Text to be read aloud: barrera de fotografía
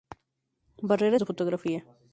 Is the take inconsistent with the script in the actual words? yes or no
no